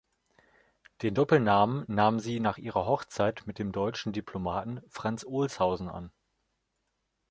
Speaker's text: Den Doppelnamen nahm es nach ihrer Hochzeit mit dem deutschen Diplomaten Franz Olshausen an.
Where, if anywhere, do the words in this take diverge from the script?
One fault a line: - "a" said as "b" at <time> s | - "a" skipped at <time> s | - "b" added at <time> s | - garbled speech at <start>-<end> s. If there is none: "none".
- "es" said as "sie" at 2.2 s